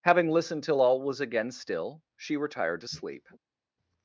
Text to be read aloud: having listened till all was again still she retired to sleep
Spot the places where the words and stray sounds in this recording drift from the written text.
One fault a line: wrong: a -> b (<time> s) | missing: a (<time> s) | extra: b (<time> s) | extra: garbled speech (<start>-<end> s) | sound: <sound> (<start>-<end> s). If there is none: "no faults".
no faults